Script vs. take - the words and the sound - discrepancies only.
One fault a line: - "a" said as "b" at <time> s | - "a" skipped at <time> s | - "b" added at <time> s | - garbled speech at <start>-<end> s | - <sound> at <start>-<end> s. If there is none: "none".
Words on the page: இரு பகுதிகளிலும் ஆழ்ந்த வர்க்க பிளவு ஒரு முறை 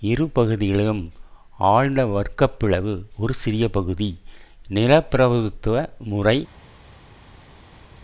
- "சிறிய பகுதி நிலப்பிரபுத்துவ" added at 3.3 s